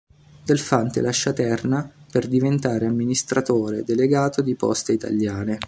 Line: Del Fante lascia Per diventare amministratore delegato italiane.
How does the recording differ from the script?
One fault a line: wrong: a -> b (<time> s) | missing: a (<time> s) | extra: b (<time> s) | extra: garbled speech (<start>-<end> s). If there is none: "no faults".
extra: Terna (1.3 s)
extra: di Poste (4.4 s)